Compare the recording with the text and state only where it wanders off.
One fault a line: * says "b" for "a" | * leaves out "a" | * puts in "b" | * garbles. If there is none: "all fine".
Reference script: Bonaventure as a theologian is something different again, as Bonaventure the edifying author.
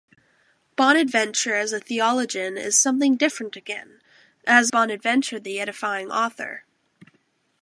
all fine